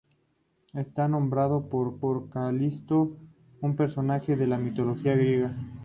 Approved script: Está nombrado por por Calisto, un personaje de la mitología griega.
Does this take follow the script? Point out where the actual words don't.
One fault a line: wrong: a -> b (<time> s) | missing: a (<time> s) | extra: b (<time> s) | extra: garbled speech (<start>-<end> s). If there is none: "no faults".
no faults